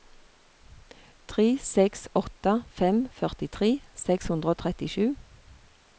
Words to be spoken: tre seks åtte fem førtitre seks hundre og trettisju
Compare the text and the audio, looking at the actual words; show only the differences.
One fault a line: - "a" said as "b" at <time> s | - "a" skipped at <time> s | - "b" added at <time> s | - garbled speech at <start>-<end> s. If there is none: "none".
none